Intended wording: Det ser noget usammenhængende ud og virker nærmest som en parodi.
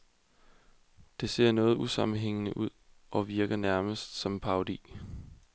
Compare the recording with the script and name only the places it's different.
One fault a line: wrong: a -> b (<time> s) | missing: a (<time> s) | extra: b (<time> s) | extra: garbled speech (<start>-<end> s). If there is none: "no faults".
no faults